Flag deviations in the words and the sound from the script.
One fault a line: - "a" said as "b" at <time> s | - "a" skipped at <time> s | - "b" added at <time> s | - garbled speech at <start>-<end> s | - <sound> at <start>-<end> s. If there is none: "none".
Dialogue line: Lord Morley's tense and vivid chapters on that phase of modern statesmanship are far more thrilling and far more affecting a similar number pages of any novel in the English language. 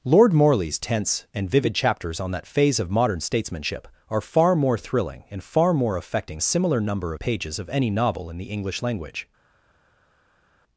none